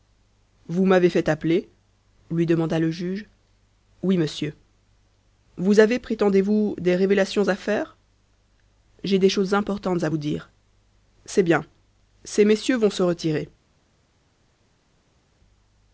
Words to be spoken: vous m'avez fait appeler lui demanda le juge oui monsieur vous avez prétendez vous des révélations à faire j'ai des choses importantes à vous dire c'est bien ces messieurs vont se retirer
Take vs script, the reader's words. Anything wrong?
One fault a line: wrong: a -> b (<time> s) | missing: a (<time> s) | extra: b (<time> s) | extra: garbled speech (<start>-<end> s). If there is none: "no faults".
no faults